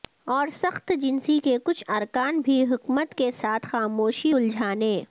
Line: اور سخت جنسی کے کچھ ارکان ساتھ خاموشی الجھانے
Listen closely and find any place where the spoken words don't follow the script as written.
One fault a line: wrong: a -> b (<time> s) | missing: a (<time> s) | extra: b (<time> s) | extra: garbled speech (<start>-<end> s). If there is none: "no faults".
extra: بھی حکمت کے (2.4 s)